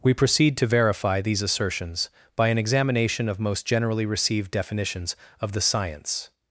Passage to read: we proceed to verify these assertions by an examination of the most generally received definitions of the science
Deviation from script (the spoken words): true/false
true